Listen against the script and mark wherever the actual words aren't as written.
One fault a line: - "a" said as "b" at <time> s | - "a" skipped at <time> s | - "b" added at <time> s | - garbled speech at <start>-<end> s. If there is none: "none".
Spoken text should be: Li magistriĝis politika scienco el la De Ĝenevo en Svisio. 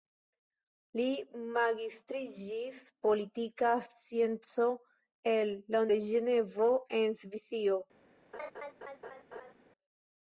none